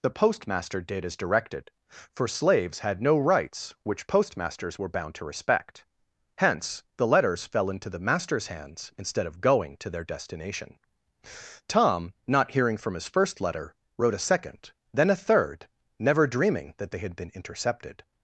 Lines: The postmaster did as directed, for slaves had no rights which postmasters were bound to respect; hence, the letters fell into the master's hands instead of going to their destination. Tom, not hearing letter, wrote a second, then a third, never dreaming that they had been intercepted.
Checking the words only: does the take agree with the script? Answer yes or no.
no